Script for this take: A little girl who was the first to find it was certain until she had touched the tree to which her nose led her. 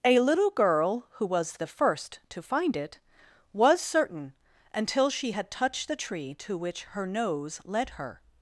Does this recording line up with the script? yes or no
yes